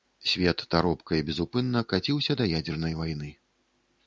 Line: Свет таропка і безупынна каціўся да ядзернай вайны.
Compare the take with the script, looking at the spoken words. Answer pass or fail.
pass